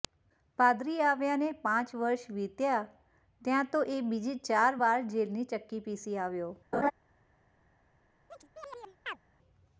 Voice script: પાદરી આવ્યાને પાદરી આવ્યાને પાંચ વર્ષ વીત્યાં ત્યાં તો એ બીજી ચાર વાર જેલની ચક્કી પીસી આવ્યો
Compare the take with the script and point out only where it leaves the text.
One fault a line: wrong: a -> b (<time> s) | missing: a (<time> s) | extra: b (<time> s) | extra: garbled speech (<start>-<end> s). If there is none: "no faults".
missing: પાદરી આવ્યાને (1.5 s)